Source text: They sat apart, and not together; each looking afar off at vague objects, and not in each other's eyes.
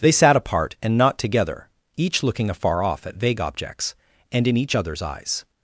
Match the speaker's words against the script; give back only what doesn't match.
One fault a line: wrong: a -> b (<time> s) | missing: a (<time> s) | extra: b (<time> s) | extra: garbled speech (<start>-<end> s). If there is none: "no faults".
missing: not (4.5 s)